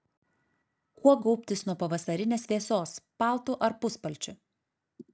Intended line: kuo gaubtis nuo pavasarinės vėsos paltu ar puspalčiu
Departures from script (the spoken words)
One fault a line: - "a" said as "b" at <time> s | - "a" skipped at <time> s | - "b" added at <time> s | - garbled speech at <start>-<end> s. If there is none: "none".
none